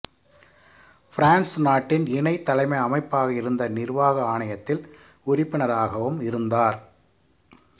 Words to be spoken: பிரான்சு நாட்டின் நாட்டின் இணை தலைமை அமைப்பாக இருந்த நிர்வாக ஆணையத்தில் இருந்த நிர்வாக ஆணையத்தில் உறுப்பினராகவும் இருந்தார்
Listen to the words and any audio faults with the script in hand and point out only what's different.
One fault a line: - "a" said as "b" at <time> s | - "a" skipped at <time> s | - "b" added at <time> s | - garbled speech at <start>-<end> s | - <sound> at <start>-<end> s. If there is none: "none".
- "நாட்டின்" skipped at 2.1 s
- "இருந்த நிர்வாக ஆணையத்தில்" skipped at 4.8 s